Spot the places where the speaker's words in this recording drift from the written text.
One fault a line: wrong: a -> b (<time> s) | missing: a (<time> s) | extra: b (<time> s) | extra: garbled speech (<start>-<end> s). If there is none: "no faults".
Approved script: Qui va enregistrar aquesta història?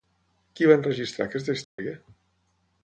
no faults